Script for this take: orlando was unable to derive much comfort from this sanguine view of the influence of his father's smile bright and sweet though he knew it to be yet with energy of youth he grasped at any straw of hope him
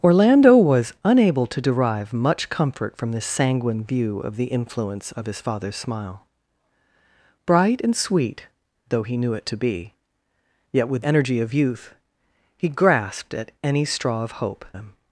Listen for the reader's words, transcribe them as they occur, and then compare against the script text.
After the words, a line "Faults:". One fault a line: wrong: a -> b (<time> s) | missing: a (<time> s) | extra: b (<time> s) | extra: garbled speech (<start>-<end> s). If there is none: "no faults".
orlando was unable to derive much comfort from this sanguine view of the influence of his father's smile bright and sweet though he knew it to be yet with energy of youth he grasped at any straw of hope him
Faults:
no faults